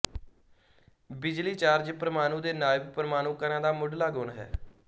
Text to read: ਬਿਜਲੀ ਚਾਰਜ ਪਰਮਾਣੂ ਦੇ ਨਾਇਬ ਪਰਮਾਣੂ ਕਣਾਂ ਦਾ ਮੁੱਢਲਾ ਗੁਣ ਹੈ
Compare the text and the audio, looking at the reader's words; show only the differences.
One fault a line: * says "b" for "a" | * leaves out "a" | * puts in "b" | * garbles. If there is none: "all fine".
all fine